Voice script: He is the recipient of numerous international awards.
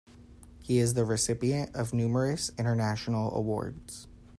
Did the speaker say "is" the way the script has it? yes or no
yes